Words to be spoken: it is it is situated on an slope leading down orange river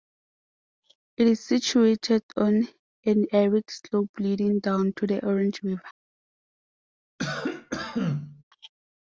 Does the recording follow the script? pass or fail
fail